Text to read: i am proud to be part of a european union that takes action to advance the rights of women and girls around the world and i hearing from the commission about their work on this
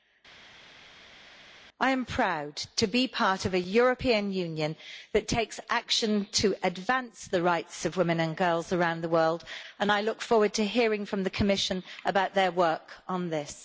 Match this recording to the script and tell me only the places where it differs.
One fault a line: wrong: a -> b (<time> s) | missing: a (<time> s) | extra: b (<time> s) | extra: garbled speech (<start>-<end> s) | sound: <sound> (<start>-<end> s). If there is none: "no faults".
extra: look forward to (10.0 s)